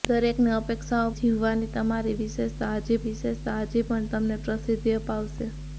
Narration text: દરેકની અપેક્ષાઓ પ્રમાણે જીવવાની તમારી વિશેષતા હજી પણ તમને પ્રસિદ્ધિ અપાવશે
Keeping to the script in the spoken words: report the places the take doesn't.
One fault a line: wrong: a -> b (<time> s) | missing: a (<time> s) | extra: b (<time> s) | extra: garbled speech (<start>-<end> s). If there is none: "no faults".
missing: પ્રમાણે (1.1 s)
extra: વિશેષતા હજી (3.1 s)